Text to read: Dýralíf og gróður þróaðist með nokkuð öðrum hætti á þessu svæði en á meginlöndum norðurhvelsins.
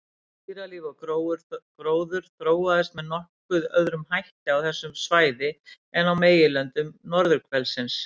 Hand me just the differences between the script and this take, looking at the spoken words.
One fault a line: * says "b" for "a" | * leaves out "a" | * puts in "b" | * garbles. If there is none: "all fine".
all fine